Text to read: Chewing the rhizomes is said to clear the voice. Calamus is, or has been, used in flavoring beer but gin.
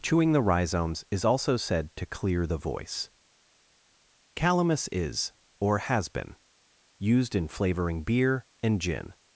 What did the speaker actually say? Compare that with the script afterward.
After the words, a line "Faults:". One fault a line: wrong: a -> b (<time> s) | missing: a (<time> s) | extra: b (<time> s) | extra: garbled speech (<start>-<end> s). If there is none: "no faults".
Chewing the rhizomes is also said to clear the voice. Calamus is, or has been, used in flavoring beer and gin.
Faults:
extra: also (1.2 s)
wrong: but -> and (8.6 s)